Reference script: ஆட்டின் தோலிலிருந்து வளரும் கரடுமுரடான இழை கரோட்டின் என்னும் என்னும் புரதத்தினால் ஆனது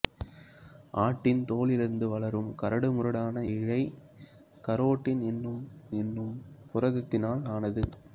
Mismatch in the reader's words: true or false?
false